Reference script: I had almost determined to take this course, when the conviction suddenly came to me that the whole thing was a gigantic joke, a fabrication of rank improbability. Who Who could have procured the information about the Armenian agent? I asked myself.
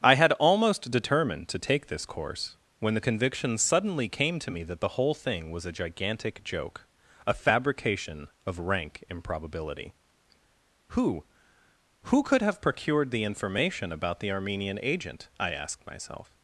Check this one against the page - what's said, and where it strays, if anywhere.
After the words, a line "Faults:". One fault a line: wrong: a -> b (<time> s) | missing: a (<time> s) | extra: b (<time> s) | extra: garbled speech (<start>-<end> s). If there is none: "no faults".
I had almost determined to take this course, when the conviction suddenly came to me that the whole thing was a gigantic joke, a fabrication of rank improbability. Who Who could have procured the information about the Armenian agent? I asked myself.
Faults:
no faults